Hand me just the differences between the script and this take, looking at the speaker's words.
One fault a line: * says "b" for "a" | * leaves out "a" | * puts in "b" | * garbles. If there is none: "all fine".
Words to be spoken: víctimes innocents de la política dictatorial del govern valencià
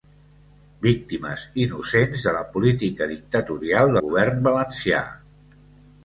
* leaves out "del"